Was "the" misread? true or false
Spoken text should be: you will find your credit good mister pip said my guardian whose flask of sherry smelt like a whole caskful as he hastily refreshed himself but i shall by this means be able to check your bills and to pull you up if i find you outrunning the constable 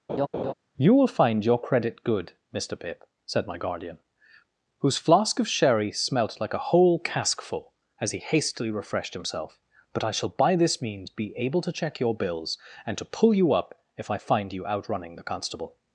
false